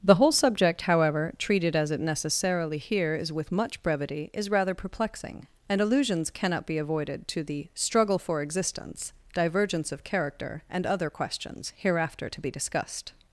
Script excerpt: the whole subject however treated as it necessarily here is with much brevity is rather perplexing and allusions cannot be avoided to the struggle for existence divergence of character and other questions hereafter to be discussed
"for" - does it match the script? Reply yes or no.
yes